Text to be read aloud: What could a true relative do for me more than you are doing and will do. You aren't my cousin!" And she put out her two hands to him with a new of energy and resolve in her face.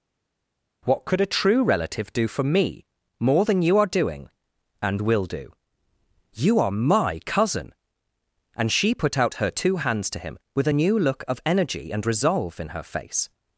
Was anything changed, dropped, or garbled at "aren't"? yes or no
yes